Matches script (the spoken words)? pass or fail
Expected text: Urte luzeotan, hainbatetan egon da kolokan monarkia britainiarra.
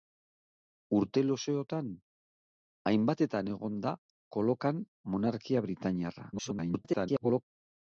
fail